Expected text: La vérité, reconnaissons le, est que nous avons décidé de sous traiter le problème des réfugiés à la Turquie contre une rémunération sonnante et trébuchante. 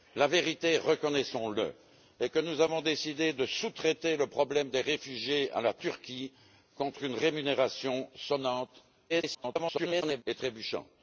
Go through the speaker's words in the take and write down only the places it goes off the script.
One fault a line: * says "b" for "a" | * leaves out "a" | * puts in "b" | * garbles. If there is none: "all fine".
* garbles